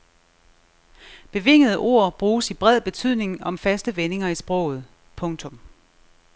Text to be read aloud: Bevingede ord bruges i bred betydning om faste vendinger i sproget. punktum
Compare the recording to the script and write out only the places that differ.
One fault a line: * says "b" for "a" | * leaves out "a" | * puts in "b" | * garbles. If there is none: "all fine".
all fine